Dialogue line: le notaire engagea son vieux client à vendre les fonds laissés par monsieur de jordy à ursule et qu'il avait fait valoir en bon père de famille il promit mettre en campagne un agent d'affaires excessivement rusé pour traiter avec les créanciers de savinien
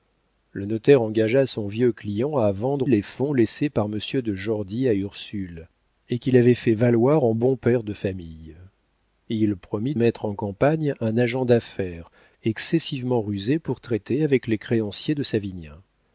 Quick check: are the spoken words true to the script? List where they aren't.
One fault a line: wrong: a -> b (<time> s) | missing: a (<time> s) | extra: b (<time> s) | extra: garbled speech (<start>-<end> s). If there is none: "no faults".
no faults